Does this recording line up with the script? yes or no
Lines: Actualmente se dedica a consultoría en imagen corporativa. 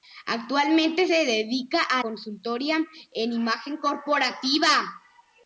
yes